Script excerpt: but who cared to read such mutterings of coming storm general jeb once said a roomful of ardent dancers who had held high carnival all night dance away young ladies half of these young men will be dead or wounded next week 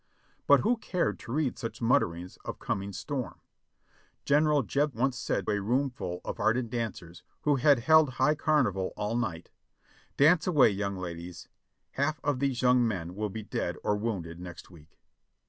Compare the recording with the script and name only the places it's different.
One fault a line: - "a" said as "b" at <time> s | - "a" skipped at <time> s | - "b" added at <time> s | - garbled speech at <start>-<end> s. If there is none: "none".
none